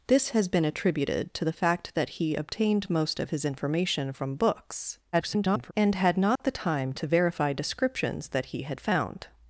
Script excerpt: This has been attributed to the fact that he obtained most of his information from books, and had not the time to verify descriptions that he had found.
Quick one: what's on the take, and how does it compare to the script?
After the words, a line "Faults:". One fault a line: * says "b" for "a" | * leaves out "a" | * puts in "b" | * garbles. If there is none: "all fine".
This has been attributed to the fact that he obtained most of his information from books, [garbled] and had not the time to verify descriptions that he had found.
Faults:
* garbles